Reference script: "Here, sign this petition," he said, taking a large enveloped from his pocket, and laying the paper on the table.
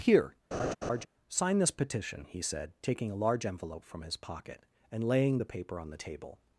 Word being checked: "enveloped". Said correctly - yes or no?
no